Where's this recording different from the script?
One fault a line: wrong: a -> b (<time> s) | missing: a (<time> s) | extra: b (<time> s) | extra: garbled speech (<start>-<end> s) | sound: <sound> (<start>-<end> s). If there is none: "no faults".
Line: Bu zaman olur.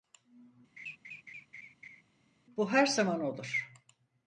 sound: laugh (0.8-2.0 s)
extra: her (2.7 s)